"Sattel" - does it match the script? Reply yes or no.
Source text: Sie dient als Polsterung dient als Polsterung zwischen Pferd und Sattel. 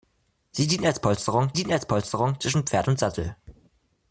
yes